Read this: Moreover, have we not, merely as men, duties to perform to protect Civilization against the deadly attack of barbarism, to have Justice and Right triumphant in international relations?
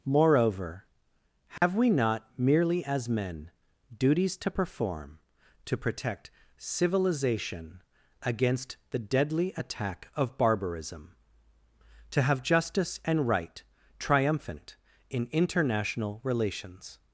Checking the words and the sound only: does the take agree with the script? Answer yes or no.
no